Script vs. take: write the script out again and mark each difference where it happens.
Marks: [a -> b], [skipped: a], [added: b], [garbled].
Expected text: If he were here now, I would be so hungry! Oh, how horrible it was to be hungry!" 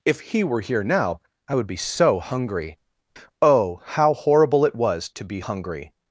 If he were here now, I would be so hungry! Oh, how horrible it was to be hungry!"